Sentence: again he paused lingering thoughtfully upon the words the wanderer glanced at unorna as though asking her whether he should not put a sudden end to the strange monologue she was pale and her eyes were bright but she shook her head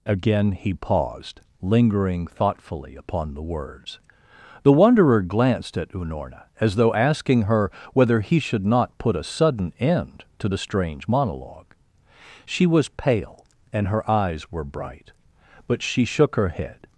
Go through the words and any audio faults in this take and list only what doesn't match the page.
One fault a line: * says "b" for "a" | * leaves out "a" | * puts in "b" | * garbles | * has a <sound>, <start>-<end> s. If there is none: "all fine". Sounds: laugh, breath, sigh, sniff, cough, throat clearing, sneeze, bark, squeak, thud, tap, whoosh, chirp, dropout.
all fine